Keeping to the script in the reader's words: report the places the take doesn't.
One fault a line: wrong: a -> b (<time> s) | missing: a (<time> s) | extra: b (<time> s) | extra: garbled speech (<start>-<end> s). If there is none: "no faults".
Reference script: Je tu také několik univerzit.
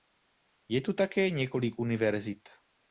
no faults